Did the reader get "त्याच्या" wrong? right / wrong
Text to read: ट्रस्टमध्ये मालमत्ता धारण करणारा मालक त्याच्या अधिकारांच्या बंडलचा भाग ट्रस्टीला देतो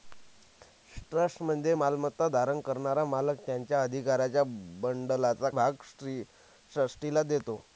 right